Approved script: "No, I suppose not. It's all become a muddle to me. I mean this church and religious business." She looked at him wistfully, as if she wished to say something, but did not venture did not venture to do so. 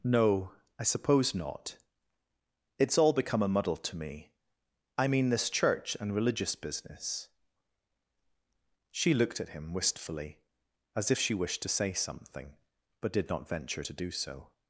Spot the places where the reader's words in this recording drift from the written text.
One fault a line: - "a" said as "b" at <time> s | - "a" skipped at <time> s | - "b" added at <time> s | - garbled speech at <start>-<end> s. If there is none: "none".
- "did not venture" skipped at 13.8 s